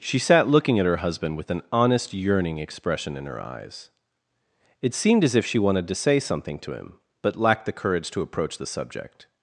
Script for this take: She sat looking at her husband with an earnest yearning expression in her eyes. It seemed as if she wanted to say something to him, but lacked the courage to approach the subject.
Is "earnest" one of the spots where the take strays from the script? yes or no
yes